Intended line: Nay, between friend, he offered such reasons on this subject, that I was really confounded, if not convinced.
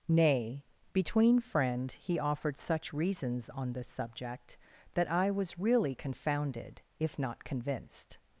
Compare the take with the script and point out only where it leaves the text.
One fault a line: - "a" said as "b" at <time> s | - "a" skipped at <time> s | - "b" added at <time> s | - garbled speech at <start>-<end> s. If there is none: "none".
none